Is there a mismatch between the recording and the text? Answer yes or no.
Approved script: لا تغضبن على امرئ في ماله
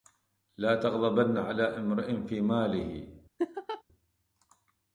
no